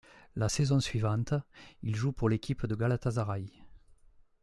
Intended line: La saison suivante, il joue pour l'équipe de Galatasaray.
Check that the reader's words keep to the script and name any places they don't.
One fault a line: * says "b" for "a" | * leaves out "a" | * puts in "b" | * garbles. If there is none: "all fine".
all fine